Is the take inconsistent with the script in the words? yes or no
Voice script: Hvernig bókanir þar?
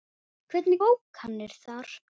no